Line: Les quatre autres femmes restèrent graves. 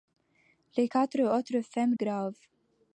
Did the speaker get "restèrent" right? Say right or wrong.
wrong